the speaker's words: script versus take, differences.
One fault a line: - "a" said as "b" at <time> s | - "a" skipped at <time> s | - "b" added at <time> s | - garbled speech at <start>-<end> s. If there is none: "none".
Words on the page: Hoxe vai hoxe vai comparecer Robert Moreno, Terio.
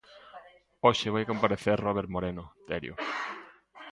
- "hoxe vai" skipped at 1.2 s